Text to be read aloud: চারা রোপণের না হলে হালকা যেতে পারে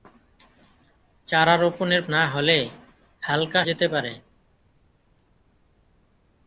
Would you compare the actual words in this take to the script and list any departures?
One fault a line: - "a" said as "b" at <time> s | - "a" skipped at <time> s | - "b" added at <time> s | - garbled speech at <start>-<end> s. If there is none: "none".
none